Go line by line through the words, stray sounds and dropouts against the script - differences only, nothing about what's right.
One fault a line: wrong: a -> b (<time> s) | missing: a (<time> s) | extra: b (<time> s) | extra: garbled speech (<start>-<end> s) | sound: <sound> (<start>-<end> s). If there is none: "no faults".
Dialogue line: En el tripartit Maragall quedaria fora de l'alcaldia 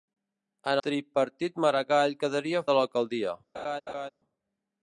missing: el (0.8 s)
missing: fora (2.6 s)
sound: laugh (3.5-4.1 s)